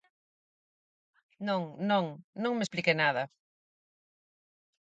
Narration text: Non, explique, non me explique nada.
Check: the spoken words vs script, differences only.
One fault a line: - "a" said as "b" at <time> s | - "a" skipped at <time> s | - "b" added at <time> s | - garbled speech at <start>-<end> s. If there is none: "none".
- "explique" said as "non" at 1.9 s